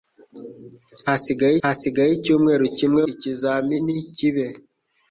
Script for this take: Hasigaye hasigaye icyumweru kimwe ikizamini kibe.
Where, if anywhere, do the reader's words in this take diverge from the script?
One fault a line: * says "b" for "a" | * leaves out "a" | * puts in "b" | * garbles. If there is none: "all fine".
all fine